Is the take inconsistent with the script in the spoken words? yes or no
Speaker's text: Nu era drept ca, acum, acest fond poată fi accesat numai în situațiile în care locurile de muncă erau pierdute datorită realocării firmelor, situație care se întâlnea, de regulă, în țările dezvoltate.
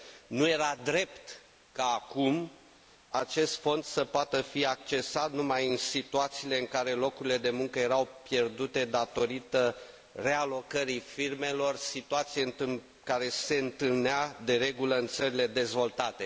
yes